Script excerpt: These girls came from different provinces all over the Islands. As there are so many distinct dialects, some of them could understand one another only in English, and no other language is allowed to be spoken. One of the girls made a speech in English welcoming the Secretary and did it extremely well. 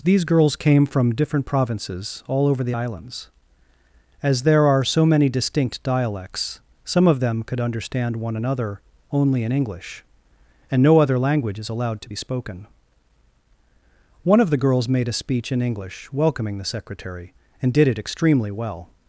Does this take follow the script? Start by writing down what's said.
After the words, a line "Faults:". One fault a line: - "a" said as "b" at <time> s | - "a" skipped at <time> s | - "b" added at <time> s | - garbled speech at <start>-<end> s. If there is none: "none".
These girls came from different provinces all over the Islands. As there are so many distinct dialects, some of them could understand one another only in English, and no other language is allowed to be spoken. One of the girls made a speech in English welcoming the Secretary and did it extremely well.
Faults:
none